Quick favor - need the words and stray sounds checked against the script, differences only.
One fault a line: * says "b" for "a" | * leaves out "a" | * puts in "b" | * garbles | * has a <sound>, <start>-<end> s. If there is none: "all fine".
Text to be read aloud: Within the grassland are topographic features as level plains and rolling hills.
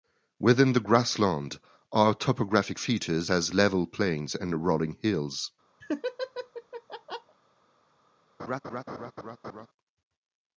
* has a laugh, 5.8-7.4 s
* has a laugh, 8.4-9.7 s